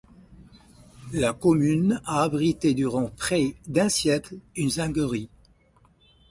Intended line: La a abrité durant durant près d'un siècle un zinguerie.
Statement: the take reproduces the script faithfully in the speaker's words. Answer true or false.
false